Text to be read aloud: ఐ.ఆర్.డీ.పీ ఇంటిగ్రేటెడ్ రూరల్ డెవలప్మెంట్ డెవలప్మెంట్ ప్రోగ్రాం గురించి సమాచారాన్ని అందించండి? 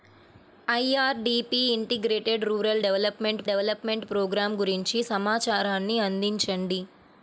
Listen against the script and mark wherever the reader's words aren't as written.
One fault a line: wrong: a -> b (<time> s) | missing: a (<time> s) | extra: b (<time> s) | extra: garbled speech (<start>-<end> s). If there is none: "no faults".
no faults